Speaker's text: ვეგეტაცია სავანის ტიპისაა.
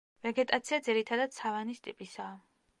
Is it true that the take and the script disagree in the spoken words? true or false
true